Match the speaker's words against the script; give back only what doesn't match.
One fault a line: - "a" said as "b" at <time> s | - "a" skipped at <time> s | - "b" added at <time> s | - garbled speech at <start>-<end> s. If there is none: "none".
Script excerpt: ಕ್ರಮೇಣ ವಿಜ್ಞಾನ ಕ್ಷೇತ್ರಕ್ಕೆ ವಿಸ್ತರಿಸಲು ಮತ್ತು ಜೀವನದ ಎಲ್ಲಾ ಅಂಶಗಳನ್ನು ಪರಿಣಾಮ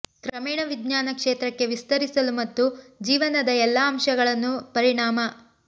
none